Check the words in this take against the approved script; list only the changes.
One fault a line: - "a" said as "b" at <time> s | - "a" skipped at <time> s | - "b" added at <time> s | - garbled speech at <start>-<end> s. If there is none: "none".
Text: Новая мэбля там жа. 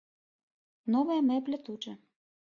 - "там" said as "тут" at 1.7 s